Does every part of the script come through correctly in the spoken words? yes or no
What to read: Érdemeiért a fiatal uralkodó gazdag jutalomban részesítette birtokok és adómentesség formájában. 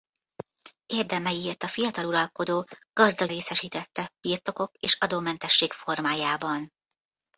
no